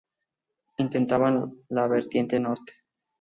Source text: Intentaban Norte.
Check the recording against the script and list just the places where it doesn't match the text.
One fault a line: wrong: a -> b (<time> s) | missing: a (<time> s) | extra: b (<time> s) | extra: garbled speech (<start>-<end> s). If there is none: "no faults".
extra: la vertiente (1.7 s)